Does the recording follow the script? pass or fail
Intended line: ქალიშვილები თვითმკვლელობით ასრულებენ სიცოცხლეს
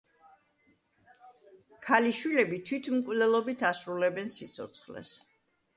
pass